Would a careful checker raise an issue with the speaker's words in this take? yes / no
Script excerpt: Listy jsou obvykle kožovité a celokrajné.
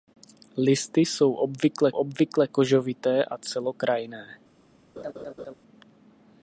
yes